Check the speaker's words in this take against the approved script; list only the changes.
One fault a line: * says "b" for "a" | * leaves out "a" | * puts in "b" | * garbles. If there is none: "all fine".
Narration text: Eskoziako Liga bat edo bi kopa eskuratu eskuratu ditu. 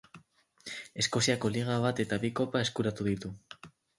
* says "eta" for "edo"
* leaves out "eskuratu"